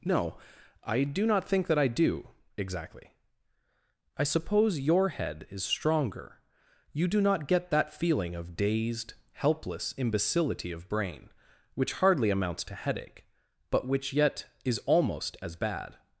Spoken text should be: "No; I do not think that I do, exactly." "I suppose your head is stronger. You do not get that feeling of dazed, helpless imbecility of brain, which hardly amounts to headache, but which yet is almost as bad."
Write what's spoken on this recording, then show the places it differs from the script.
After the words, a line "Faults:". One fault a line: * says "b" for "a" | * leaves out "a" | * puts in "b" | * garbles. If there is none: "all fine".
"No; I do not think that I do, exactly." "I suppose your head is stronger. You do not get that feeling of dazed, helpless imbecility of brain, which hardly amounts to headache, but which yet is almost as bad."
Faults:
all fine